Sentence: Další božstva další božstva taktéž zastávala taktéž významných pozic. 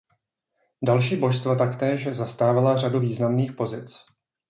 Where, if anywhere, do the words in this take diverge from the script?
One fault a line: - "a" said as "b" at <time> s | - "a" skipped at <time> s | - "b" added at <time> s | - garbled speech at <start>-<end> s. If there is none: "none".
- "další božstva" skipped at 1.6 s
- "taktéž" said as "řadu" at 2.8 s